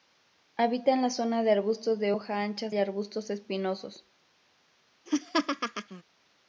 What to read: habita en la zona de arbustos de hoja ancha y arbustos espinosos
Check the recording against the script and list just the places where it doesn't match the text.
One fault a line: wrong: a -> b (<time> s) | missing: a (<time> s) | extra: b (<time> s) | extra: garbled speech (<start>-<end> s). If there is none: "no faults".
no faults